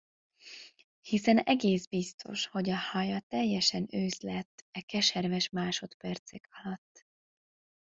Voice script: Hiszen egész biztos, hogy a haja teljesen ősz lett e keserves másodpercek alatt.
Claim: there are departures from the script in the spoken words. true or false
false